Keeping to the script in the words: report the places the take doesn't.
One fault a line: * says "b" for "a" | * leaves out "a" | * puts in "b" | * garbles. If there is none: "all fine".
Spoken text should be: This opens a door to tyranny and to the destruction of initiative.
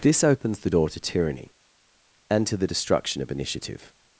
* says "the" for "a"